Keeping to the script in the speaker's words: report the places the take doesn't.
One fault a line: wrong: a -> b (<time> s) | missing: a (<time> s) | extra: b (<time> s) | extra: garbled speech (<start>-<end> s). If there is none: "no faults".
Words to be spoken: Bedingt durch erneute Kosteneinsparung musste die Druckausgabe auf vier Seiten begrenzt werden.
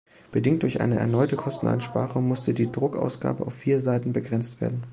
extra: eine (0.8 s)